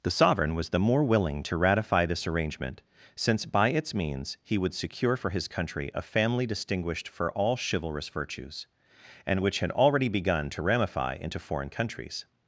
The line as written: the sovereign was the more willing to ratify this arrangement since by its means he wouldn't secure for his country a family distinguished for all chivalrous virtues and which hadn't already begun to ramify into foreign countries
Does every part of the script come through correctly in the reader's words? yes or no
no